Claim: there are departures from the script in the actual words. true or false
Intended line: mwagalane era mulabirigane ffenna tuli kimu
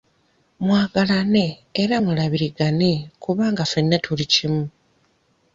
true